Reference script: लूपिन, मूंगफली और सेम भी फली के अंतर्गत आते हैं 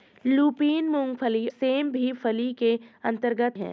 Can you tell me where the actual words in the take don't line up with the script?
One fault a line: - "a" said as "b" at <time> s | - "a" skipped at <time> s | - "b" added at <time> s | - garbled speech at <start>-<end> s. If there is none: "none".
- "और" skipped at 1.5 s
- "आते" skipped at 3.6 s